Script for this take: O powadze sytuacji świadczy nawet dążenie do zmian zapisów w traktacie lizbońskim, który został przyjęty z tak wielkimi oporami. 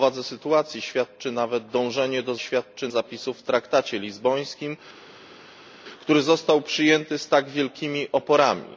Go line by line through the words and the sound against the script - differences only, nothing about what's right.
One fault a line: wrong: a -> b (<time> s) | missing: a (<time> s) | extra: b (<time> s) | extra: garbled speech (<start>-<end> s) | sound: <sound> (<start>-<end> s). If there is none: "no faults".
wrong: zmian -> świadczy (2.4 s)